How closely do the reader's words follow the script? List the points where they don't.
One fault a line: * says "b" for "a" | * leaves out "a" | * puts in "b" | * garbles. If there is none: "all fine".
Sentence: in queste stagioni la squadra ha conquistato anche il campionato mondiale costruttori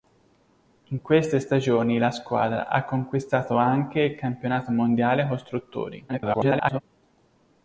* garbles